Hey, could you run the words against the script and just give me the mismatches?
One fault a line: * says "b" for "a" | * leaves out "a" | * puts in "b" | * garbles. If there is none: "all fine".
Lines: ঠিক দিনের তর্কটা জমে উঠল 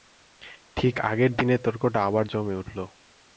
* puts in "আগের"
* puts in "আবার"